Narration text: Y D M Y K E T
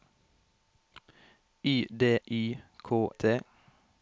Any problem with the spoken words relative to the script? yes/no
yes